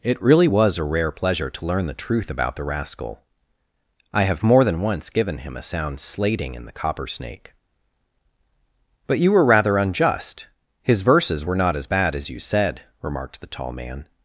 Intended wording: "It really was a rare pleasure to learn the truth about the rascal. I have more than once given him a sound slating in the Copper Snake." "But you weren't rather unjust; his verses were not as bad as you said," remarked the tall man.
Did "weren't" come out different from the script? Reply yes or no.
yes